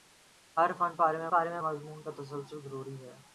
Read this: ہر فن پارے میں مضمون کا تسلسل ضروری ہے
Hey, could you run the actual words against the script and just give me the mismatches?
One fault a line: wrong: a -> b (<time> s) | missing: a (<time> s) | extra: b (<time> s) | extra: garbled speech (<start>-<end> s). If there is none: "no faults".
extra: پارے میں (1.3 s)